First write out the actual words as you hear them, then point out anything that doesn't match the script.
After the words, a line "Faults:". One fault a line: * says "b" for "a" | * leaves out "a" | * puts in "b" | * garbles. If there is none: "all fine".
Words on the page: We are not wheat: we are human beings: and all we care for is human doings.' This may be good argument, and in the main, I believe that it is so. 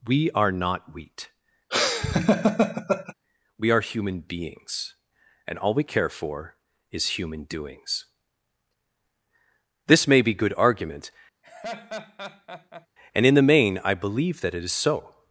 We are not wheat: we are human beings: and all we care for is human doings.' This may be good argument, and in the main, I believe that it is so.
Faults:
all fine